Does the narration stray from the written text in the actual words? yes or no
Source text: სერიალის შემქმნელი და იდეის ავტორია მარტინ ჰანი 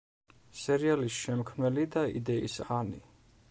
yes